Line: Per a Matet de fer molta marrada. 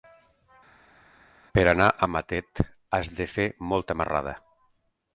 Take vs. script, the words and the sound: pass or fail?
fail